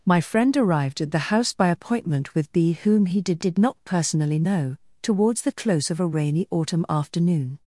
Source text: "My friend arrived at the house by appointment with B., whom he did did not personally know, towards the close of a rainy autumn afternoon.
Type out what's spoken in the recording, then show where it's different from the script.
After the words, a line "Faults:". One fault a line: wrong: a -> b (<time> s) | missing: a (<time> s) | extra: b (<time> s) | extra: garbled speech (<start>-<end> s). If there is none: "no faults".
"My friend arrived at the house by appointment with B., whom he did did not personally know, towards the close of a rainy autumn afternoon.
Faults:
no faults